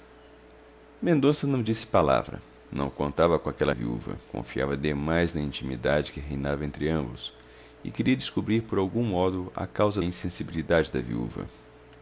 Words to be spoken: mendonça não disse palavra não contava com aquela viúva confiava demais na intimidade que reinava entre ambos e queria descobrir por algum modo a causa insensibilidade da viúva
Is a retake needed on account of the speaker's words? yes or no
no